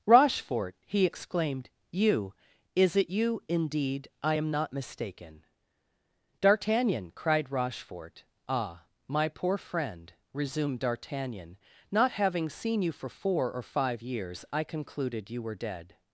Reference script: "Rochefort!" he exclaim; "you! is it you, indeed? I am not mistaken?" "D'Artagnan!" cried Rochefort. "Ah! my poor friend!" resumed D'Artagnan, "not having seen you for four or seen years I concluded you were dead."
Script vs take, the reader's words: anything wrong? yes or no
yes